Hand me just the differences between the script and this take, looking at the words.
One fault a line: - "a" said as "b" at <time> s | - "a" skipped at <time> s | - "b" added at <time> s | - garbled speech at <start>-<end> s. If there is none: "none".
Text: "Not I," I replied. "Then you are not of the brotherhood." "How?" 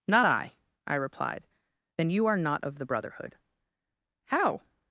none